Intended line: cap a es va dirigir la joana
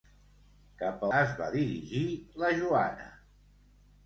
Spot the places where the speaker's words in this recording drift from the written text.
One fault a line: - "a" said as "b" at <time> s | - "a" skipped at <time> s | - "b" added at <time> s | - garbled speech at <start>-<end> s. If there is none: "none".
none